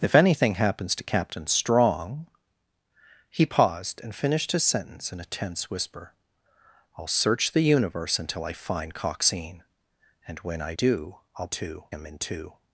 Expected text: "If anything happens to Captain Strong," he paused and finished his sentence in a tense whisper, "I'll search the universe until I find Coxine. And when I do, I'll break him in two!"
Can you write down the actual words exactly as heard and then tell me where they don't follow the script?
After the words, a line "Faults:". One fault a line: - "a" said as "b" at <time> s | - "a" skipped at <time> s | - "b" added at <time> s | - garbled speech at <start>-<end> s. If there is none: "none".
"If anything happens to Captain Strong," he paused and finished his sentence in a tense whisper, "I'll search the universe until I find Coxine. And when I do, I'll two him in two!"
Faults:
- "break" said as "two" at 11.5 s